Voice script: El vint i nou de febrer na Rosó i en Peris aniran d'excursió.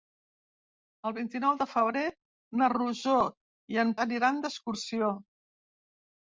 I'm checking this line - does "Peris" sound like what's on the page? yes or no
no